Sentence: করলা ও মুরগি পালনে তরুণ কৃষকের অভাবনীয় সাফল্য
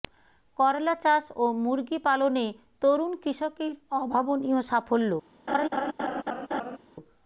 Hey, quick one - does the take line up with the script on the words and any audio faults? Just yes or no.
no